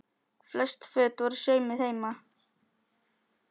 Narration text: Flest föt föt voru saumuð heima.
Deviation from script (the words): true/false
true